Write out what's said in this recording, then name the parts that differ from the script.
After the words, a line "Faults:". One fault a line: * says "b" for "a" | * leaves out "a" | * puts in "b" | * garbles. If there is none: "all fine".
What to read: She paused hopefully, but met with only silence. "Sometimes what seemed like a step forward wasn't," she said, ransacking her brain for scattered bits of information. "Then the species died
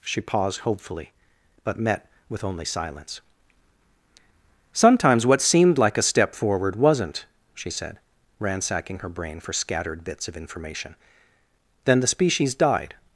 She paused hopefully, but met with only silence. "Sometimes what seemed like a step forward wasn't," she said, ransacking her brain for scattered bits of information. "Then the species died
Faults:
all fine